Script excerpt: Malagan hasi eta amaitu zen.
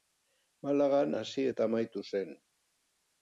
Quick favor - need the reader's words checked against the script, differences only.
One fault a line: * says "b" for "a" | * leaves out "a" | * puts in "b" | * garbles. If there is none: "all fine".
all fine